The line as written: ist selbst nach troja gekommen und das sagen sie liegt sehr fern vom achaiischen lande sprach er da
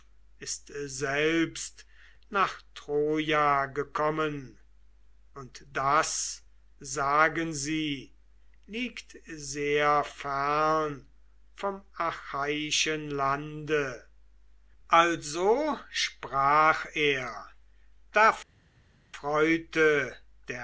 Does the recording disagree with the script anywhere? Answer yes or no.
yes